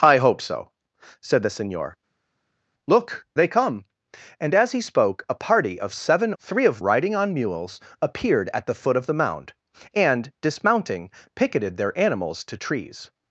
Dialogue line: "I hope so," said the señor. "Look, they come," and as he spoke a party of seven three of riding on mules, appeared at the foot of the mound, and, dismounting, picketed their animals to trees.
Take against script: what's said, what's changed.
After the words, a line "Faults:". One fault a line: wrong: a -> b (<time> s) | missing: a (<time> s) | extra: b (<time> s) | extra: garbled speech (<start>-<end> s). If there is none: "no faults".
"I hope so," said the señor. "Look, they come," and as he spoke a party of seven three of riding on mules, appeared at the foot of the mound, and, dismounting, picketed their animals to trees.
Faults:
no faults